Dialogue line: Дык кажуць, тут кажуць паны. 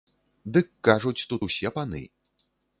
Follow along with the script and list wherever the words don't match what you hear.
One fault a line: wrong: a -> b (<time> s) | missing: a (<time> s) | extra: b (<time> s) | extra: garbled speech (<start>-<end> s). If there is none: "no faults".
wrong: кажуць -> усе (1.5 s)